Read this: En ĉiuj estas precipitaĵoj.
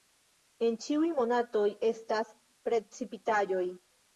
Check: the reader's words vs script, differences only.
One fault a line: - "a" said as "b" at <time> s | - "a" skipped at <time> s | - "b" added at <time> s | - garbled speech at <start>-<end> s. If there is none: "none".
- "monatoj" added at 1.2 s